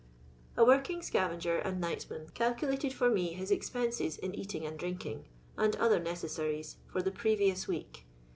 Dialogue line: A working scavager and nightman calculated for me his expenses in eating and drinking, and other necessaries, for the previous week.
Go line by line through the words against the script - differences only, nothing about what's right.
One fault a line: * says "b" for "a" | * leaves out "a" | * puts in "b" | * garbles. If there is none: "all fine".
all fine